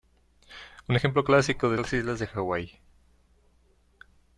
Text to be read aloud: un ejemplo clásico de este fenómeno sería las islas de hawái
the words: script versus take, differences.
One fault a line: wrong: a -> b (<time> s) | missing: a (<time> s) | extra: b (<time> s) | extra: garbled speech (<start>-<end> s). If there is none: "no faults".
missing: este fenómeno sería (1.7 s)